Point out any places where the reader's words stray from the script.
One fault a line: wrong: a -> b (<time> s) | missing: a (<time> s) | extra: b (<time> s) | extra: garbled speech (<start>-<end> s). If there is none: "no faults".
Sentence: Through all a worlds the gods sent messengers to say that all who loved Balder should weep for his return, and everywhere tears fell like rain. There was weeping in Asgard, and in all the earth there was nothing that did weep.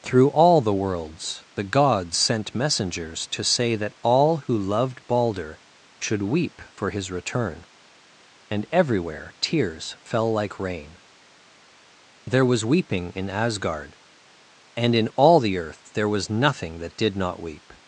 wrong: a -> the (0.6 s)
extra: not (17.2 s)